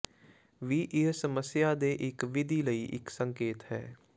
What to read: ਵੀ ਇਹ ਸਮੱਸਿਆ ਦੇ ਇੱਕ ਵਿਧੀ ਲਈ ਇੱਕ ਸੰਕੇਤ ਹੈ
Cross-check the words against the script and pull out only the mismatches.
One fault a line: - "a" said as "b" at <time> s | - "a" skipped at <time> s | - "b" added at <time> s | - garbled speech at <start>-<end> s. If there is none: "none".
none